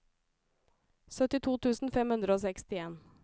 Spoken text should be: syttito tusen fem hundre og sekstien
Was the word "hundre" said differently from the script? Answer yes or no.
no